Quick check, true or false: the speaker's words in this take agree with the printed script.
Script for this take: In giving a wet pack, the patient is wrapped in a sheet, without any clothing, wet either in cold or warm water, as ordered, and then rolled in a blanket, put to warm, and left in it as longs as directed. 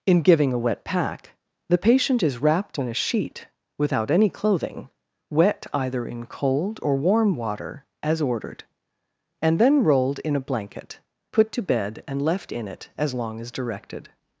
false